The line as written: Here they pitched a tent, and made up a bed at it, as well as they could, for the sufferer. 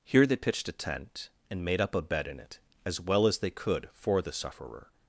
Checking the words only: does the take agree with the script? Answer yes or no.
no